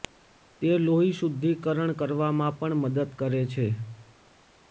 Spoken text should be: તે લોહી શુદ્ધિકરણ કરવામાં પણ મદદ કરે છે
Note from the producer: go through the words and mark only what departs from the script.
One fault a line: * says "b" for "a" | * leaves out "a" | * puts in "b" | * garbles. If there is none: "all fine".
all fine